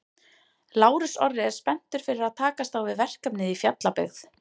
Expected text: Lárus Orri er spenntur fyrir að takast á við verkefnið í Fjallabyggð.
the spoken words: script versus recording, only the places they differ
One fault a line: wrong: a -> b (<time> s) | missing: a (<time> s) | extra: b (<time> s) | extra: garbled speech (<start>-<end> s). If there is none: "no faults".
no faults